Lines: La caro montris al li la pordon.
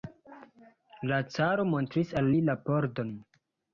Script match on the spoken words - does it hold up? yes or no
yes